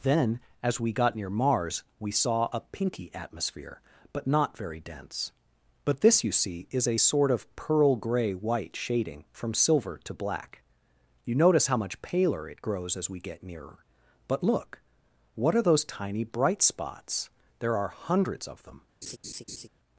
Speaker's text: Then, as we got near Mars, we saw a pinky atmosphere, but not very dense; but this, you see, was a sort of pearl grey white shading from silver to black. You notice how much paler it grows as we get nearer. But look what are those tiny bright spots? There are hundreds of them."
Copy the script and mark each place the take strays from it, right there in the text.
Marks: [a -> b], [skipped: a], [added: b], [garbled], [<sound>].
Then, as we got near Mars, we saw a pinky atmosphere, but not very dense; but this, you see, [was -> is] a sort of pearl grey white shading from silver to black. You notice how much paler it grows as we get nearer. But look what are those tiny bright spots? There are hundreds of them." [laugh]